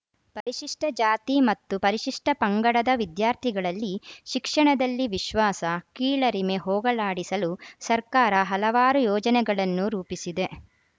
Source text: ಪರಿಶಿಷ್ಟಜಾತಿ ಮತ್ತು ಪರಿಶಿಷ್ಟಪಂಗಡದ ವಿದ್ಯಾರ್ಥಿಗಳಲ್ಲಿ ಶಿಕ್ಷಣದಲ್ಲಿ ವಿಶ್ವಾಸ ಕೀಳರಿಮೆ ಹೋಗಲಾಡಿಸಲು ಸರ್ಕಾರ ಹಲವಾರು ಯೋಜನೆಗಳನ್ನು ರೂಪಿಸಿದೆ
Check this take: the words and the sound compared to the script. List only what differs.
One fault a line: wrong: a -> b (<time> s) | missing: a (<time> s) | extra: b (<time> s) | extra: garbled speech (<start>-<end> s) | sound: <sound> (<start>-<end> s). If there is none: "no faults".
sound: dropout (0.4-0.5 s)